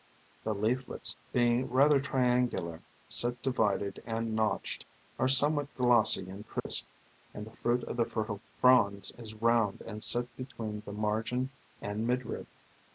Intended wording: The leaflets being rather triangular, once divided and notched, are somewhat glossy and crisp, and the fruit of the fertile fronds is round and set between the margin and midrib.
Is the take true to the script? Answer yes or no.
no